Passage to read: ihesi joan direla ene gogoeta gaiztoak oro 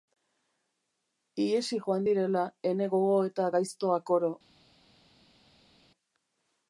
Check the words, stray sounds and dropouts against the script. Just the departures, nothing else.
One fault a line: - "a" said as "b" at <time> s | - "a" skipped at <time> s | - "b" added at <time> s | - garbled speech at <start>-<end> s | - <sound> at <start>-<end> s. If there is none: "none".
none